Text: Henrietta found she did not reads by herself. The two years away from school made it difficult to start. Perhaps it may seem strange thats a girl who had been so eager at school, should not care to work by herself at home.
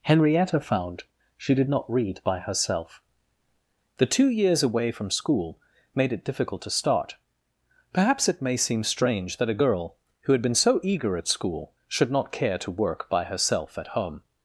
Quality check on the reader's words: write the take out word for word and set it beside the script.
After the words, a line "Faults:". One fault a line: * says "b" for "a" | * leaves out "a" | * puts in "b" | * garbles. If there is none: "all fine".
Henrietta found she did not read by herself. The two years away from school made it difficult to start. Perhaps it may seem strange that a girl who had been so eager at school, should not care to work by herself at home.
Faults:
* says "read" for "reads"
* says "that" for "thats"